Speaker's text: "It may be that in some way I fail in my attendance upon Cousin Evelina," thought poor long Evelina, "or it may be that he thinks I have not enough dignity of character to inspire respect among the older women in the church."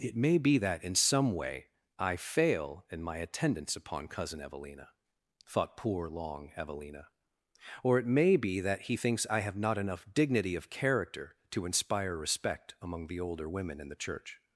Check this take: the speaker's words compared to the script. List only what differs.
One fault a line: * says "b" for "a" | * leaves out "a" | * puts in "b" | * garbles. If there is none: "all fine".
all fine